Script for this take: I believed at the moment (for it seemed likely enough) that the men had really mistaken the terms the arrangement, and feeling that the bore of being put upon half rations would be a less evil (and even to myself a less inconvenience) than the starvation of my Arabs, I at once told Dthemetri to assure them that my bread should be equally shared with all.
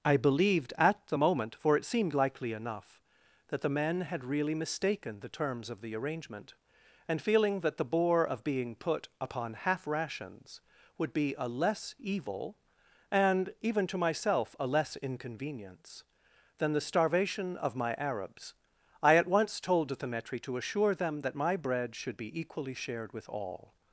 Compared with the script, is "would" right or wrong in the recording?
right